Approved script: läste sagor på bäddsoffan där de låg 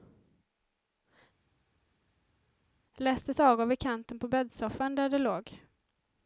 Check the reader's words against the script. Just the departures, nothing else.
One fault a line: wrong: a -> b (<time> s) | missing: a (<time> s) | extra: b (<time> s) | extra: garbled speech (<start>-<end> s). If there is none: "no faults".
extra: vid kanten (3.7 s)